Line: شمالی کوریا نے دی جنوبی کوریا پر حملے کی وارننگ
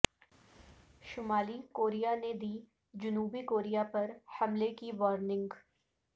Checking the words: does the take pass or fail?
pass